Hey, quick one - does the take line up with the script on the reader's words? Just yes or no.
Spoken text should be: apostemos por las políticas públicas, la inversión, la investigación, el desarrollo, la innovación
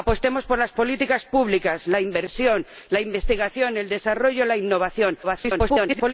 no